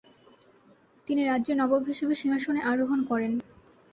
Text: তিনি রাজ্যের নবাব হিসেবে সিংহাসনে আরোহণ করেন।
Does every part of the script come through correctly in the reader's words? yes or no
yes